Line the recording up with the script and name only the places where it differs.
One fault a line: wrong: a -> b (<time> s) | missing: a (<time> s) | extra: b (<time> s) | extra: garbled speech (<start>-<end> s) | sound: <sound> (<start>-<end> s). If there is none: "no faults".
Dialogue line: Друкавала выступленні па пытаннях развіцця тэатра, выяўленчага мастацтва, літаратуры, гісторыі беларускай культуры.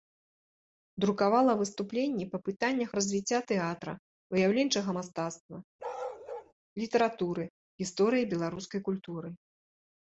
sound: bark (5.8-6.5 s)